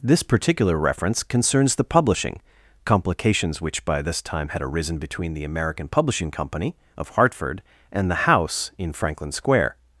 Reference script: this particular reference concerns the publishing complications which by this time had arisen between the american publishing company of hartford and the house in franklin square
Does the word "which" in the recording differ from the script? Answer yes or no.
no